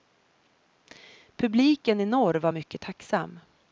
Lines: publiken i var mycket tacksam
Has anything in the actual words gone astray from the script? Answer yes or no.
yes